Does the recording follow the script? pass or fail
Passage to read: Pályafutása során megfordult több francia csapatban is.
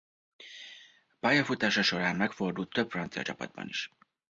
pass